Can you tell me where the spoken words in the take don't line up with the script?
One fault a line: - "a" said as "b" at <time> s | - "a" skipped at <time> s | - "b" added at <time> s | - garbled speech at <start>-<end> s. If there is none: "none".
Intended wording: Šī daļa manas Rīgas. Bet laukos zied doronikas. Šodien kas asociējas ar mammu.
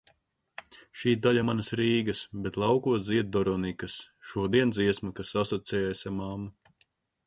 - "dziesma" added at 4.8 s